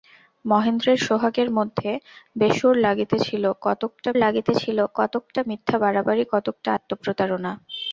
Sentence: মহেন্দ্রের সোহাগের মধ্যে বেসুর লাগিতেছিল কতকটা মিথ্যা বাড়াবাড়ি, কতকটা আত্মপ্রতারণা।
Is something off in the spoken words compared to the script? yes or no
yes